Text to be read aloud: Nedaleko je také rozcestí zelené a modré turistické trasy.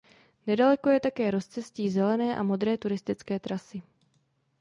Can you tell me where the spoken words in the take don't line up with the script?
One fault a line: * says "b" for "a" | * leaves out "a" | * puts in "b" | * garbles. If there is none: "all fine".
all fine